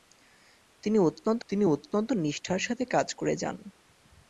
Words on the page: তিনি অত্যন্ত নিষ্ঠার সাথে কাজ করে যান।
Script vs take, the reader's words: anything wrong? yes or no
yes